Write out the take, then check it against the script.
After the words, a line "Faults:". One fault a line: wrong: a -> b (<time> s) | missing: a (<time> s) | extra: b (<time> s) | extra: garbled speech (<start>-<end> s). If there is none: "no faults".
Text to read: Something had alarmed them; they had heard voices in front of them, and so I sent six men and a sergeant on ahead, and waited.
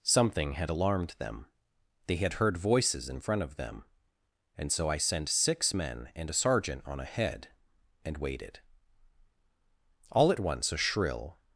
Something had alarmed them; they had heard voices in front of them, and so I sent six men and a sergeant on ahead, and waited. "All at once a shrill
Faults:
extra: All at once a shrill (10.1 s)